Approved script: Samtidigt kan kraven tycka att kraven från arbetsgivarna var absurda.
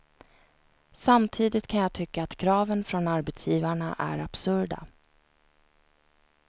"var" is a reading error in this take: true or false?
true